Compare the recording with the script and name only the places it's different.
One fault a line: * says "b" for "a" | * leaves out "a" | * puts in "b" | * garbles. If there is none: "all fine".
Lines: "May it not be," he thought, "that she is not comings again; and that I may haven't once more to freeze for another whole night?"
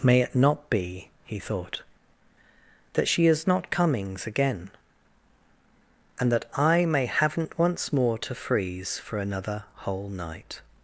all fine